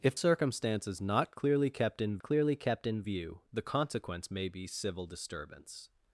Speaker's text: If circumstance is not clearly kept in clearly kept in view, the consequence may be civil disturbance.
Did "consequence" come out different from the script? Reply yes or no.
no